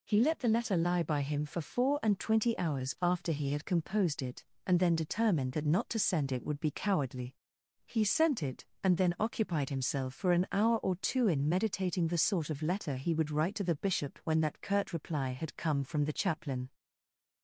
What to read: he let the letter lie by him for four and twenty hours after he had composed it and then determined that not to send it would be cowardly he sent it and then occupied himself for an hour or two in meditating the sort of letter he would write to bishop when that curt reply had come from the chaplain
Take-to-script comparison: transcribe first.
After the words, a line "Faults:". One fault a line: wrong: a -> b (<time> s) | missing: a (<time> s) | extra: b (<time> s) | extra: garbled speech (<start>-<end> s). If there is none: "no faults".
he let the letter lie by him for four and twenty hours after he had composed it and then determined that not to send it would be cowardly he sent it and then occupied himself for an hour or two in meditating the sort of letter he would write to the bishop when that curt reply had come from the chaplain
Faults:
extra: the (13.6 s)